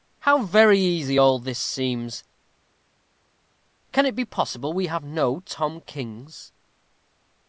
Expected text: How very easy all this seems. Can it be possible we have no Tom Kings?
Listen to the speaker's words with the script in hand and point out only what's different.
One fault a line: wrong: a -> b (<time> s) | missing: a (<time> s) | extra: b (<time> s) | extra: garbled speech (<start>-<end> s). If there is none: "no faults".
no faults